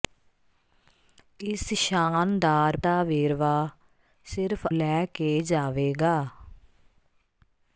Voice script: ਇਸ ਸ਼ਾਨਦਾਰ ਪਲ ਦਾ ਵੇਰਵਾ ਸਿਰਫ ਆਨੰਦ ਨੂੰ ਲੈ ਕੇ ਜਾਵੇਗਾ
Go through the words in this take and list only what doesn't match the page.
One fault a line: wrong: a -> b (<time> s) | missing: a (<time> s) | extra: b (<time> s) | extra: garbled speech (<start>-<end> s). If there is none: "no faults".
missing: ਪਲ (2.8 s)
missing: ਆਨੰਦ ਨੂੰ (4.7 s)